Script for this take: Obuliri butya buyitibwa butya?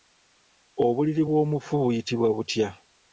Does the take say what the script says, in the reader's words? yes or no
no